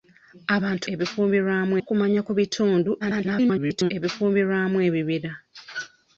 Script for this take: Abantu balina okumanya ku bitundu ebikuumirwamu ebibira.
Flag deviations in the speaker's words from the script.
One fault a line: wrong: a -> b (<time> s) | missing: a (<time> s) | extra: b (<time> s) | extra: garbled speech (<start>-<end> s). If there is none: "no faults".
wrong: balina -> ebikuumirwamu (0.9 s)
extra: garbled speech (3.0-3.9 s)